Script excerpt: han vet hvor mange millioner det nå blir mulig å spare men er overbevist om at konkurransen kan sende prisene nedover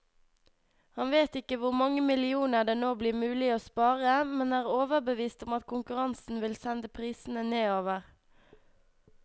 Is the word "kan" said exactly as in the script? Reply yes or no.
no